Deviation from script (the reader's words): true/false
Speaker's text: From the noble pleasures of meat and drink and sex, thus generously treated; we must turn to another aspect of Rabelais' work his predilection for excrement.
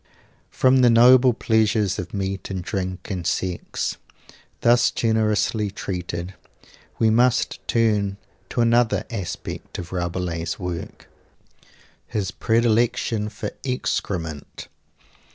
false